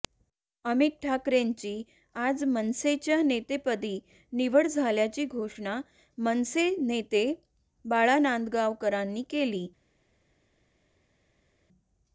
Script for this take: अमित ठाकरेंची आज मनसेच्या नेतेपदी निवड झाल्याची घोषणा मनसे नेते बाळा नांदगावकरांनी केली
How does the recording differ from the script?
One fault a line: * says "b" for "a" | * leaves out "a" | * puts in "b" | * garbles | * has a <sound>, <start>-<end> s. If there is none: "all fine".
all fine